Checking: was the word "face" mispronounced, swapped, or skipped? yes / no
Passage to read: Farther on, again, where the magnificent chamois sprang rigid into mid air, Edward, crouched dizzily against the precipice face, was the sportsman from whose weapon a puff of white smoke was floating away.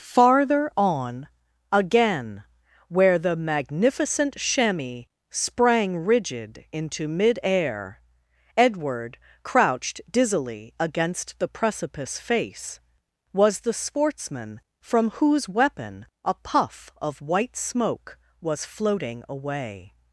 no